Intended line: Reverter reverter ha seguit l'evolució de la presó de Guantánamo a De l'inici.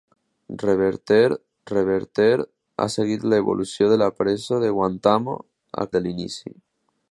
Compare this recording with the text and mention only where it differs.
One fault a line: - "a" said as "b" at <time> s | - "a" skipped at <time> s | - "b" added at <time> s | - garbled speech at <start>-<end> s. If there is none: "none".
none